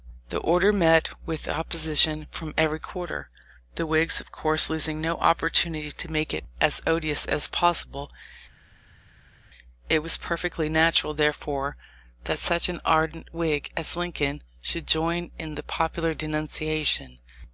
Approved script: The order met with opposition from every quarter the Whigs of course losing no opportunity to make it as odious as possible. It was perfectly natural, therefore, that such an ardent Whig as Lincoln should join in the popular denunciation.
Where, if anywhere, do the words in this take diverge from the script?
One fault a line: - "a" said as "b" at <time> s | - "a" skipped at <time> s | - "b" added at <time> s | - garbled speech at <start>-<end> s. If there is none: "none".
none